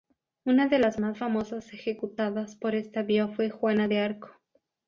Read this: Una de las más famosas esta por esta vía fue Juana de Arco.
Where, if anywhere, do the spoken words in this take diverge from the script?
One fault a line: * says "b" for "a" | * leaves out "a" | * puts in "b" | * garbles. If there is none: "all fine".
* says "ejecutadas" for "esta"